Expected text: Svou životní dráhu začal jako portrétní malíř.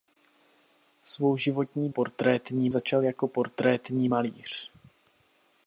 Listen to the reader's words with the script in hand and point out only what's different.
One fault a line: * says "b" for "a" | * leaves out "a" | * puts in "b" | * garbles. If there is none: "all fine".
* says "portrétní" for "dráhu"